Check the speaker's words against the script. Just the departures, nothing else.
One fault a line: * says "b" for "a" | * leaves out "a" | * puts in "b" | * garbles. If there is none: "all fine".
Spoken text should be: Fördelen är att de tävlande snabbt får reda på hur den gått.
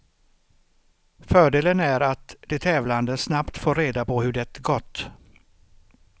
* says "det" for "den"